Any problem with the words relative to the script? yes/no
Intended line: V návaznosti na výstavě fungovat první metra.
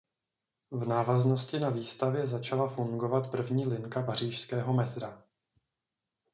yes